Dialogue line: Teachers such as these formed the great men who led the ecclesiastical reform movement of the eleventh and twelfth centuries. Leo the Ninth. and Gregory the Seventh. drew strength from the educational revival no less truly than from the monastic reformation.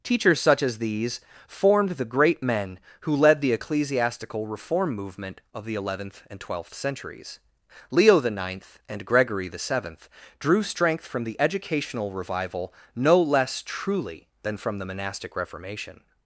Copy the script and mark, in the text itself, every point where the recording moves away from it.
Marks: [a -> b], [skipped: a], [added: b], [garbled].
Teachers such as these formed the great men who led the ecclesiastical reform movement of the eleventh and twelfth centuries. Leo the Ninth. and Gregory the Seventh. drew strength from the educational revival no less truly than from the monastic reformation.